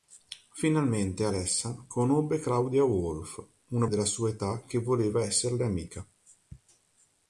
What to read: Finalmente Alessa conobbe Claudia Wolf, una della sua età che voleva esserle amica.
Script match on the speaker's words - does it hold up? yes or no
yes